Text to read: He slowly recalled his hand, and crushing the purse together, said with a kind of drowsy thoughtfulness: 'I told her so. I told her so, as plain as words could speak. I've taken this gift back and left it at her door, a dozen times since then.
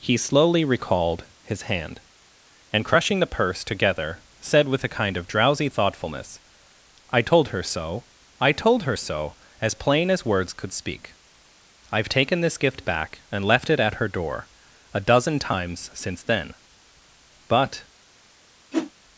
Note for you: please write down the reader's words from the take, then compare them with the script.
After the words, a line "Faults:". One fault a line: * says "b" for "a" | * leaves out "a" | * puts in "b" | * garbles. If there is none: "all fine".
He slowly recalled his hand, and crushing the purse together, said with a kind of drowsy thoughtfulness: 'I told her so. I told her so, as plain as words could speak. I've taken this gift back and left it at her door, a dozen times since then. But
Faults:
* puts in "But"